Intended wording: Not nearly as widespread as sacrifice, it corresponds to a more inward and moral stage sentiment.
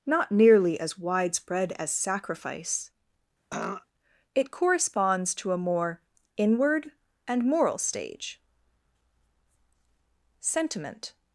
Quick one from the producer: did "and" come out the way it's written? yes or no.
yes